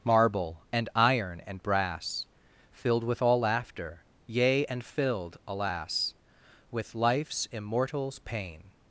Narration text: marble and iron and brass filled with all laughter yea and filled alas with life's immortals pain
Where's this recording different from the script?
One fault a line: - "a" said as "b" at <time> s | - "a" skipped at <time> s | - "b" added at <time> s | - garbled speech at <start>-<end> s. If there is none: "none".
none